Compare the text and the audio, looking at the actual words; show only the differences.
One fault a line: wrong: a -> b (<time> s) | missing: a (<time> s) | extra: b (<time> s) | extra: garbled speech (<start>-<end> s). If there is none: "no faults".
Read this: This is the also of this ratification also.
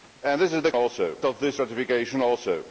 no faults